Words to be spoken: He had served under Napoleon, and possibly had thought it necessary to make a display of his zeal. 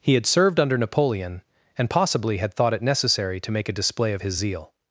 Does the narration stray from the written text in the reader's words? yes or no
no